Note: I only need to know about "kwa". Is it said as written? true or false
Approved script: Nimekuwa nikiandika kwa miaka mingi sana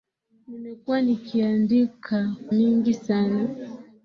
false